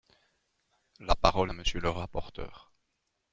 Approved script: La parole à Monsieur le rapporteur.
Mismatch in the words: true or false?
false